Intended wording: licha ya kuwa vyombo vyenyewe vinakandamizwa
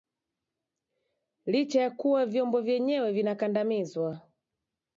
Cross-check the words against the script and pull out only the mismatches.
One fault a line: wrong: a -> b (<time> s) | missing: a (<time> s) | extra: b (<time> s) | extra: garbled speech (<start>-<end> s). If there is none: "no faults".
no faults